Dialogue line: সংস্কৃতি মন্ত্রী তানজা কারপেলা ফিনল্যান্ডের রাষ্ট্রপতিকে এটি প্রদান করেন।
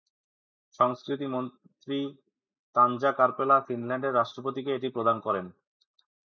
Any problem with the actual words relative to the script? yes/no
no